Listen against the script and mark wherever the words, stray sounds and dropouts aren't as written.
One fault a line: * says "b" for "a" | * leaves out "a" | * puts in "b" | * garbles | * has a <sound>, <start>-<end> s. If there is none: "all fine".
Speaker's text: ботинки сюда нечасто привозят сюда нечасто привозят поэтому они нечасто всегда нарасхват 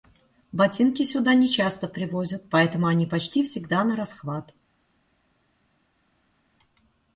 * leaves out "сюда нечасто привозят"
* says "почти" for "нечасто"